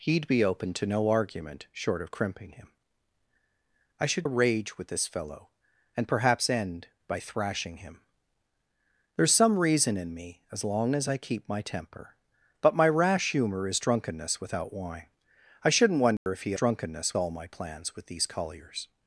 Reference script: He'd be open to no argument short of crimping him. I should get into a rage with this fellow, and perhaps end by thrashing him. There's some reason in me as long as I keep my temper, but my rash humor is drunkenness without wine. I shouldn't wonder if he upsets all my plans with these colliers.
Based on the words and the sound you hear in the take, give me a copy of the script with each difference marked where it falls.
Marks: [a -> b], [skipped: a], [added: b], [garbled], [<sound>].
He'd be open to no argument short of crimping him. I should [skipped: get into] a rage with this fellow, and perhaps end by thrashing him. There's some reason in me as long as I keep my temper, but my rash humor is drunkenness without wine. I shouldn't wonder [dropout] if he [upsets -> drunkenness] all my plans with these colliers.